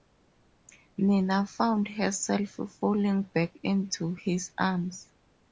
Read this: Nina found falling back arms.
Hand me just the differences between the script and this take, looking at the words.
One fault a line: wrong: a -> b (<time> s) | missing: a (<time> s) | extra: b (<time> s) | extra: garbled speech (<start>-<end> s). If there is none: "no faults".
extra: herself (1.9 s)
extra: into his (3.6 s)